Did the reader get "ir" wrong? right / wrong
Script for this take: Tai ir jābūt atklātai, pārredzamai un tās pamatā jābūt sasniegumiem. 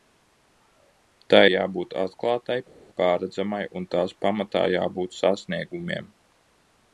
wrong